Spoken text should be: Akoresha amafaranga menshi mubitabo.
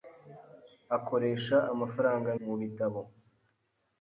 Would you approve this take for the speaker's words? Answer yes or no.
no